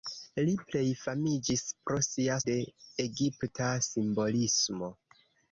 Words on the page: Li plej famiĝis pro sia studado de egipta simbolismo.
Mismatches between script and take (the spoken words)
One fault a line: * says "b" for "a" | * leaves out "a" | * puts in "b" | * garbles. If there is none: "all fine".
* leaves out "studado"